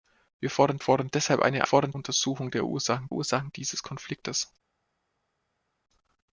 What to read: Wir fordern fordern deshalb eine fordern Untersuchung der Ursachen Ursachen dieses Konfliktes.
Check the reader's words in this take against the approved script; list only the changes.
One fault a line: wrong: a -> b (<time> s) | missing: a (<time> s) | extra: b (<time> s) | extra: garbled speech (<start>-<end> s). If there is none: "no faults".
no faults